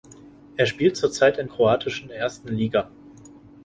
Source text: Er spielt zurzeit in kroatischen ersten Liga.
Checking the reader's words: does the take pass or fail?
pass